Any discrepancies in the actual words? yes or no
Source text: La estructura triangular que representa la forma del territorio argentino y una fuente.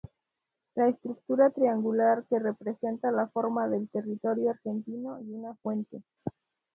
no